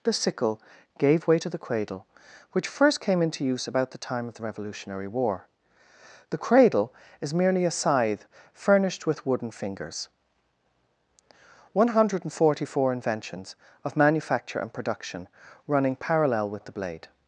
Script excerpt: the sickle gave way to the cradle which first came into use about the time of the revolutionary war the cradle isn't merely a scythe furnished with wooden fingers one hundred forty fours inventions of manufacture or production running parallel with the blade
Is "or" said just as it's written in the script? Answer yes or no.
no